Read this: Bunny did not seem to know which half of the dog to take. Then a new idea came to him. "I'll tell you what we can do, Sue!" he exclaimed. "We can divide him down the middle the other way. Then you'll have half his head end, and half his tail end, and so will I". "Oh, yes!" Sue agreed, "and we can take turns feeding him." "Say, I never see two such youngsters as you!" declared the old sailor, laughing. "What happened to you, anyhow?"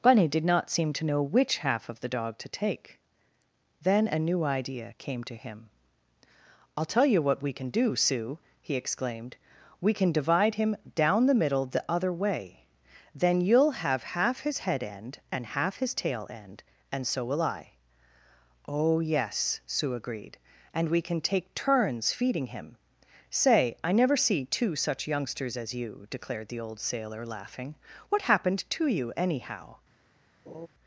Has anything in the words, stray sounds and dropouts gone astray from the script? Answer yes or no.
yes